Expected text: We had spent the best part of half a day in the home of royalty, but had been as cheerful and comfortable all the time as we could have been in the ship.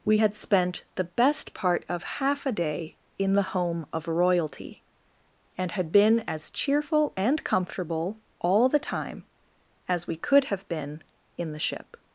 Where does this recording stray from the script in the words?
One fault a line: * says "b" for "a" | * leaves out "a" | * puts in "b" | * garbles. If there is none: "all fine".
* says "and" for "but"